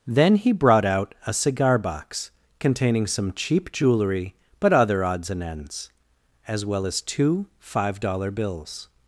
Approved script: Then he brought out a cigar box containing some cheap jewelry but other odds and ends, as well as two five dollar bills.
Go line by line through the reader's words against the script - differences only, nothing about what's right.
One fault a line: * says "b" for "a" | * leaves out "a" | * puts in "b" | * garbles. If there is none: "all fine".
all fine